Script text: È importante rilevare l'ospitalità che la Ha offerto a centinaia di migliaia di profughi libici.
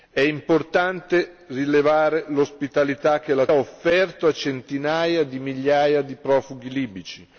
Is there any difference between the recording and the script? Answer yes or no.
no